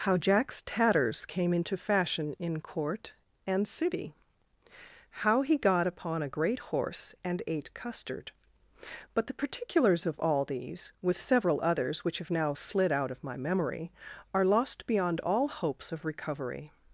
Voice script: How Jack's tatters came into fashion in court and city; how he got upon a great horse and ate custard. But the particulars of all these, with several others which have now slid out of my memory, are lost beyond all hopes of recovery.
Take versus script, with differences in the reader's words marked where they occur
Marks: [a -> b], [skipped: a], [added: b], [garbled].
How Jack's tatters came into fashion in court and city; how he got upon a great horse and ate custard. But the particulars of all these, with several others which have now slid out of my memory, are lost beyond all hopes of recovery.